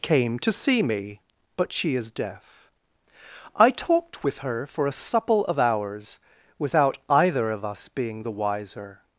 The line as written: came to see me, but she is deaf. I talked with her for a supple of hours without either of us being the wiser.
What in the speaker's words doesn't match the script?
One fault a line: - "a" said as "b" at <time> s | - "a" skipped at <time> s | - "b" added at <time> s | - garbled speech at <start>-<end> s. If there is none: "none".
none